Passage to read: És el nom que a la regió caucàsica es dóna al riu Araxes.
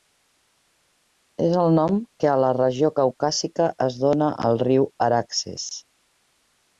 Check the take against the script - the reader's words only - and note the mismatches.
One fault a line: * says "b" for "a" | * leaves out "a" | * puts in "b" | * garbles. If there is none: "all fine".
all fine